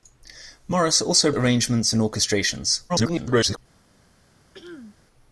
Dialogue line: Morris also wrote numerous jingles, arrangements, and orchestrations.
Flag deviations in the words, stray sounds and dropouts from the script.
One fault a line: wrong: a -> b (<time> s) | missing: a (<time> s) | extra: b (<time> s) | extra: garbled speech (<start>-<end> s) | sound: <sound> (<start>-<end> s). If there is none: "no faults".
missing: wrote numerous jingles (1.3 s)
extra: garbled speech (2.9-3.6 s)
sound: throat clearing (4.5-5.0 s)